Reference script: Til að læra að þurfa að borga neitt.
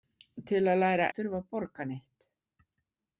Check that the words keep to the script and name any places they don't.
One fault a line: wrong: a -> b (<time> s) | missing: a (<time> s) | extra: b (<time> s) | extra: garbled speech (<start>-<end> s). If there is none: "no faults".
no faults